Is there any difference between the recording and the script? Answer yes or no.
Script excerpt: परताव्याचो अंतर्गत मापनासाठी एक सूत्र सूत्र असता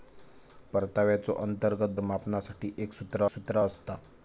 no